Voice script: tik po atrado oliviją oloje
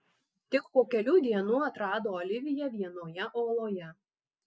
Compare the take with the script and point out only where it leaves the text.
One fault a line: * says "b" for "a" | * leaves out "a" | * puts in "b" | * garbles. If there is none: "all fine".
* puts in "kelių dienų"
* puts in "vienoje"